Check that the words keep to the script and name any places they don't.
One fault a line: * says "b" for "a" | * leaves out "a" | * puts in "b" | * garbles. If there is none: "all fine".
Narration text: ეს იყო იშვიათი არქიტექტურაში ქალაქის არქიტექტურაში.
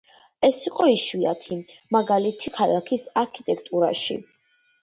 * says "მაგალითი" for "არქიტექტურაში"